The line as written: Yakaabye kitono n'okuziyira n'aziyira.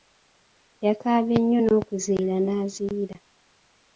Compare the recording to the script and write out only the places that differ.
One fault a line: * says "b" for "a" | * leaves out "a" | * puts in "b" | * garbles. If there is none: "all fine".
* says "nnyo" for "kitono"